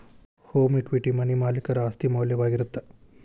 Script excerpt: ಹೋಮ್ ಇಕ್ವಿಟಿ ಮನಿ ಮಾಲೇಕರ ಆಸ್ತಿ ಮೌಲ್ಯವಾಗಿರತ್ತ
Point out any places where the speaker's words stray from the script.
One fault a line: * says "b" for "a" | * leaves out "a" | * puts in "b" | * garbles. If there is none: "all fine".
all fine